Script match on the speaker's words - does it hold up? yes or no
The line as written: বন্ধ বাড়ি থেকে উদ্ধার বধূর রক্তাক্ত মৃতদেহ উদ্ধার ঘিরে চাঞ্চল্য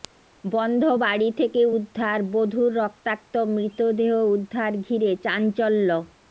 yes